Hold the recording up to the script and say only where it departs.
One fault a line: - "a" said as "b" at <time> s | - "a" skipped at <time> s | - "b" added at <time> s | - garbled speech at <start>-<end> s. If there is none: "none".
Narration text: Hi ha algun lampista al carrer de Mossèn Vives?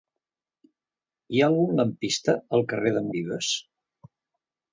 - "Mossèn" skipped at 3.1 s